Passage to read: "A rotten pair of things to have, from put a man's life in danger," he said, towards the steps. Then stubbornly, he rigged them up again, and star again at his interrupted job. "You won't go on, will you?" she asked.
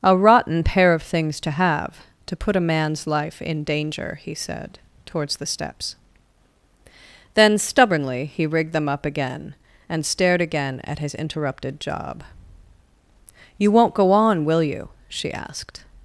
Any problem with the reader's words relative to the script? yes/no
yes